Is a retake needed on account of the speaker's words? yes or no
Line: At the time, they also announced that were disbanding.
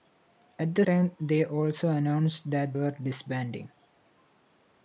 no